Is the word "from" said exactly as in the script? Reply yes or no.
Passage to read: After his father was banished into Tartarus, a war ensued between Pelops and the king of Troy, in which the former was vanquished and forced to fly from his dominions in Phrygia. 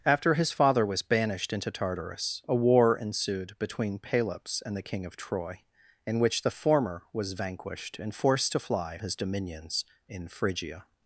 no